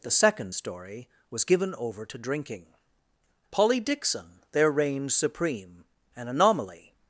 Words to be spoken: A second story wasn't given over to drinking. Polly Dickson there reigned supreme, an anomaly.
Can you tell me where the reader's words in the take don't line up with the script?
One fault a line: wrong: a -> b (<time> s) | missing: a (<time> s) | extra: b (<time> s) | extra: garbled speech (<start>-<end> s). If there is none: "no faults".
wrong: A -> The (0.0 s)
wrong: wasn't -> was (1.3 s)